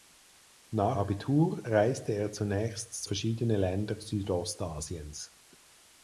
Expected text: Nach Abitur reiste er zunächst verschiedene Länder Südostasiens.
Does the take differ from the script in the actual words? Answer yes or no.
no